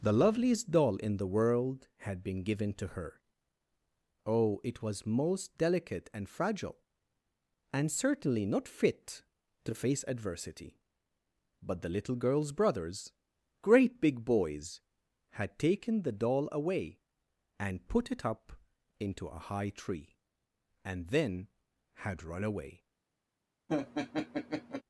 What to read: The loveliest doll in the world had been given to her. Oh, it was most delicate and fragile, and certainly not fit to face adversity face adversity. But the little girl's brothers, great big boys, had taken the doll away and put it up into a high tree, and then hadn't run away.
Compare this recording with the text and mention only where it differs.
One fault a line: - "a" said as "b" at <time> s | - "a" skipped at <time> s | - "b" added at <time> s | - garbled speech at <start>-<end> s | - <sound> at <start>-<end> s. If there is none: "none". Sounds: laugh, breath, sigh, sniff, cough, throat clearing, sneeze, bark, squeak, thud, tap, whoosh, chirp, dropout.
- "face adversity" skipped at 10.8 s
- "hadn't" said as "had" at 21.9 s
- laugh at 23.7-24.8 s